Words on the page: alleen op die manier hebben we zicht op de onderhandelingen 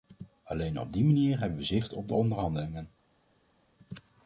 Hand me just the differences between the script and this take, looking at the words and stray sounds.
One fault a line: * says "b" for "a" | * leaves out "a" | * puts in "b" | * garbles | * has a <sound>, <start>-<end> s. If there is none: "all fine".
all fine